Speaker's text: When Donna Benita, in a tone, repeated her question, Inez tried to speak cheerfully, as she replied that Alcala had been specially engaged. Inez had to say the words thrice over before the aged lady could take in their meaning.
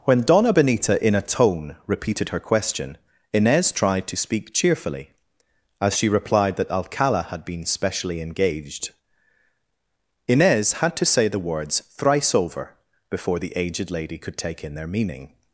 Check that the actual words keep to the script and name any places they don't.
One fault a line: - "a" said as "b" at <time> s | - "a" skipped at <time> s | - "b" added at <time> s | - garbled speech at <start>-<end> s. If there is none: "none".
none